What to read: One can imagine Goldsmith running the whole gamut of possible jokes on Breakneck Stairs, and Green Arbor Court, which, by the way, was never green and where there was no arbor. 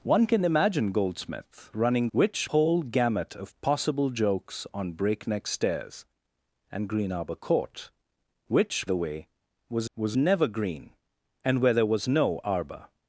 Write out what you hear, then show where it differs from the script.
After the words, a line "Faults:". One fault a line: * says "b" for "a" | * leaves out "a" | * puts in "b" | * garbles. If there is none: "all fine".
One can imagine Goldsmith running which whole gamut of possible jokes on Breakneck Stairs, and Green Arbor Court, which, the way, was was never green and where there was no arbor.
Faults:
* says "which" for "the"
* leaves out "by"
* puts in "was"